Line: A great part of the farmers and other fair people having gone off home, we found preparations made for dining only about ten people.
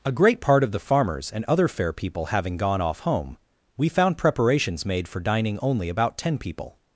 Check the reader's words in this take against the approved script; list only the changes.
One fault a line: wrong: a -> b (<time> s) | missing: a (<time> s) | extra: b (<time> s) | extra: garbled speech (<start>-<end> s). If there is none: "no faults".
no faults